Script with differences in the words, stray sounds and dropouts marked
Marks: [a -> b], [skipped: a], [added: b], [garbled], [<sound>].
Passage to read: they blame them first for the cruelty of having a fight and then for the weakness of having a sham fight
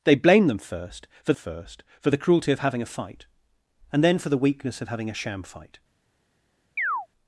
they blame them first for [added: first for] the cruelty of having a fight and then for the weakness of having a sham fight [chirp]